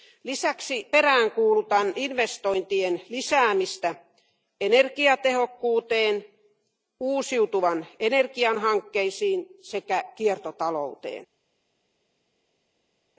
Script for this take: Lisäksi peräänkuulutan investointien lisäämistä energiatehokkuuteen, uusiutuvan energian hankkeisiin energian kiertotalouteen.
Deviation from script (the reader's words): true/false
true